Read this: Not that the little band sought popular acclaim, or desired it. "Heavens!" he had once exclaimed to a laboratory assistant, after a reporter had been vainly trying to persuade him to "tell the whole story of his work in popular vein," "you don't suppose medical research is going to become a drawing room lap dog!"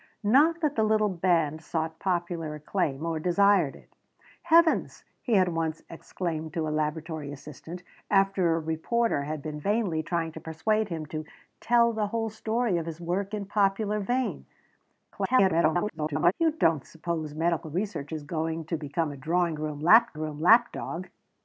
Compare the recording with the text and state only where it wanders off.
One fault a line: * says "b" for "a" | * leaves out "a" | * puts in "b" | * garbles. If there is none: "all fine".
* garbles
* puts in "room lap"